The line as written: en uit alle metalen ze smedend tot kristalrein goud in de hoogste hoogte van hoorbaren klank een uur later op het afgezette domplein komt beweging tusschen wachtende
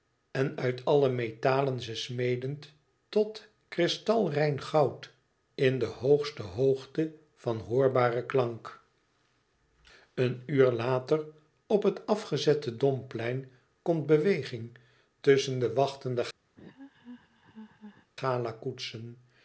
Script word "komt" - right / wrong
right